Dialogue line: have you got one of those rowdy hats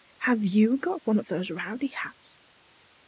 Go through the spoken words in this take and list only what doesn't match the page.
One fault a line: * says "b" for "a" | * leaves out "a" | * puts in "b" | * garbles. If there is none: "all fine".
all fine